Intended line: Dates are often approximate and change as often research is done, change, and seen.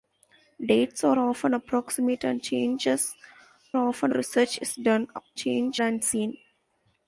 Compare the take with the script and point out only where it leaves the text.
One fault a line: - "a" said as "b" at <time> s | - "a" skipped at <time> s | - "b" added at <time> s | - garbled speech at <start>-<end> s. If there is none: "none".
none